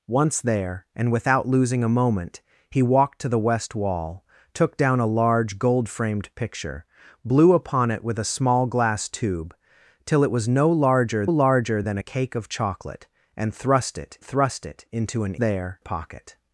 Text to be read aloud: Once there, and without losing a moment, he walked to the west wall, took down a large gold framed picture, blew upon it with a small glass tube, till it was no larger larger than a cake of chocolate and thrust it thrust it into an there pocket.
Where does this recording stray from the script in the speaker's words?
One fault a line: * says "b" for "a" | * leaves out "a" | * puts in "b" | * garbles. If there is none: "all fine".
all fine